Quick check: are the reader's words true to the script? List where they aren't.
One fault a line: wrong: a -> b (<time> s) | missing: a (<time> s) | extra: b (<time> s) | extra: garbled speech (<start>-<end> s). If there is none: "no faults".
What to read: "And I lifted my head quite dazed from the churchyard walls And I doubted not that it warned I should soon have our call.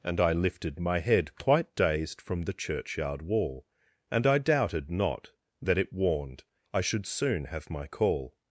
wrong: walls -> wall (3.2 s)
wrong: our -> my (7.7 s)